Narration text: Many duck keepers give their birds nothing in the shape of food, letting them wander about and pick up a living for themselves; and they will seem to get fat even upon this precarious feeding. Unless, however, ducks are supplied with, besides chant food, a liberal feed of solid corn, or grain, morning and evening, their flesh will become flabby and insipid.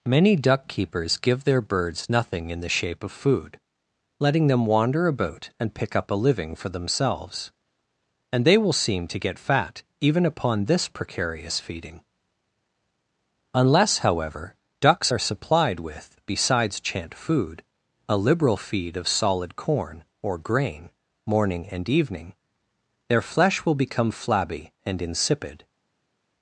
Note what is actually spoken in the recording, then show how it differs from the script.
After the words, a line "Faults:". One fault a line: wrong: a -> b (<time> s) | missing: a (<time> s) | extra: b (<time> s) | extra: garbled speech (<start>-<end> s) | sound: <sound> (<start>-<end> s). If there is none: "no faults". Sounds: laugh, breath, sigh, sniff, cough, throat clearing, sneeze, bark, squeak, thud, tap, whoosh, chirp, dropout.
Many duck keepers give their birds nothing in the shape of food, letting them wander about and pick up a living for themselves; and they will seem to get fat even upon this precarious feeding. Unless, however, ducks are supplied with, besides chant food, a liberal feed of solid corn, or grain, morning and evening, their flesh will become flabby and insipid.
Faults:
no faults